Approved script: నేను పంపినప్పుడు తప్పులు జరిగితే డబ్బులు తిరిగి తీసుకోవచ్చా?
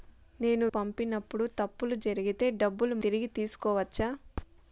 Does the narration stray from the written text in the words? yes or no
no